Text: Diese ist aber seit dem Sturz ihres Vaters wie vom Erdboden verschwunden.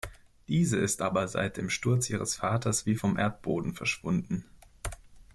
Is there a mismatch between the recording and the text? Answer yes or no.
no